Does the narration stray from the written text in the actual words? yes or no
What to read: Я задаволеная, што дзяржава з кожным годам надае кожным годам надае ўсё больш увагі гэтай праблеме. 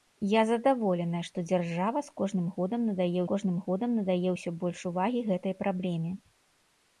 no